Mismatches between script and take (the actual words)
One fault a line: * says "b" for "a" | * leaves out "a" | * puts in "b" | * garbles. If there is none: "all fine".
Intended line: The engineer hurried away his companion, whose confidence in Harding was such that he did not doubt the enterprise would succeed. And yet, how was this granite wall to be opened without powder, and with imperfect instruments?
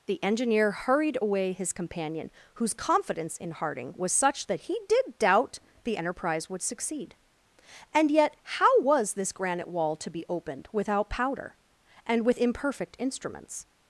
* leaves out "not"